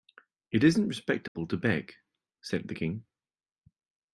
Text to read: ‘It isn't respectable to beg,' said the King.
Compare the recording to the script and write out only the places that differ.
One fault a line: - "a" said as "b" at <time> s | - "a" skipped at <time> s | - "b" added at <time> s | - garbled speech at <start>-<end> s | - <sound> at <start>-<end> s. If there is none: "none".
- dropout at 1.3-1.4 s